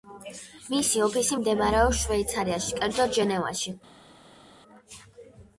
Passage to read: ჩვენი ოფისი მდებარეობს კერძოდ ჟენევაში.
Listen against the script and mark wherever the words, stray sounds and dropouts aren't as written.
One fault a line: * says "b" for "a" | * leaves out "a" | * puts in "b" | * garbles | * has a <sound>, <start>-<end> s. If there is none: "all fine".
* says "მისი" for "ჩვენი"
* puts in "შვეიცარიაში"